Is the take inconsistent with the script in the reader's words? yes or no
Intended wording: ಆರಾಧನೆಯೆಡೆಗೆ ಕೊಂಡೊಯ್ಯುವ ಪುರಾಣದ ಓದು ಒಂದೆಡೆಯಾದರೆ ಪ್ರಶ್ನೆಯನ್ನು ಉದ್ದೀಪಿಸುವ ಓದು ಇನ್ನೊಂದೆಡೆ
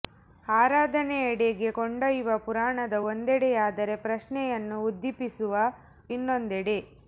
yes